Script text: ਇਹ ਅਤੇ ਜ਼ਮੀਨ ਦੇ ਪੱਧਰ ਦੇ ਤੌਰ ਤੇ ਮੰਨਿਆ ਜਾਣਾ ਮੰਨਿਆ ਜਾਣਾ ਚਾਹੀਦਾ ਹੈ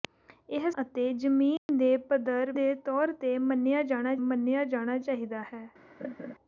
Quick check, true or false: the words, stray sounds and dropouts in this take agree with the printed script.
false